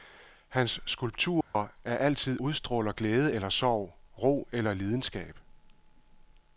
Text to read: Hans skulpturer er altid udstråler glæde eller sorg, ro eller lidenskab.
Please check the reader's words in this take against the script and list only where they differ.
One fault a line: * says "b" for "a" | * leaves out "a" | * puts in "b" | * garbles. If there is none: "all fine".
all fine